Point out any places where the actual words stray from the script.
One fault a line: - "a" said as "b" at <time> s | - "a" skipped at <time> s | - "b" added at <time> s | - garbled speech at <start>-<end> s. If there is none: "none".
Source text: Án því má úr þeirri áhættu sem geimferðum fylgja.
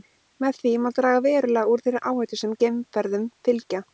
- "Án" said as "Með" at 0.4 s
- "draga verulega" added at 1.0 s